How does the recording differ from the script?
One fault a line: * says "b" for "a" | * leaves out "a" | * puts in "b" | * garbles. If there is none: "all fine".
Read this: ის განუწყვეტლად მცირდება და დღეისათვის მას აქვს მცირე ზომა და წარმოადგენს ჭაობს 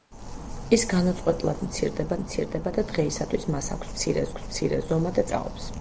* puts in "მცირდება"
* puts in "აქვს მცირე"
* leaves out "წარმოადგენს"